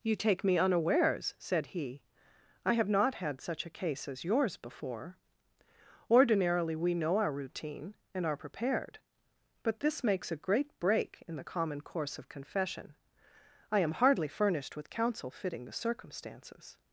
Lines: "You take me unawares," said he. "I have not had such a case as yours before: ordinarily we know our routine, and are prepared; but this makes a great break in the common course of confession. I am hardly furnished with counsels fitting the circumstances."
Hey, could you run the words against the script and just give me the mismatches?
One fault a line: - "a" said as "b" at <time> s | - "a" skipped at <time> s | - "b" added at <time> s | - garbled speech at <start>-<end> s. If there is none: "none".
- "counsels" said as "counsel" at 14.9 s